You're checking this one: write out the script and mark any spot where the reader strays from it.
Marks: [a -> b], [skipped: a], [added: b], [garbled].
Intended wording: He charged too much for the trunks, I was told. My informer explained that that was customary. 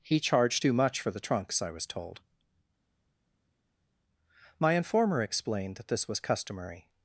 He charged too much for the trunks, I was told. My informer explained that [that -> this] was customary.